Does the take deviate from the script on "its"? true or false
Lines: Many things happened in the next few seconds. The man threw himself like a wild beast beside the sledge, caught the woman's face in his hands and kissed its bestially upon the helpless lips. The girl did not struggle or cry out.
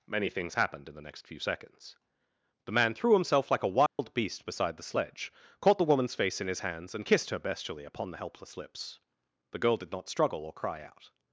true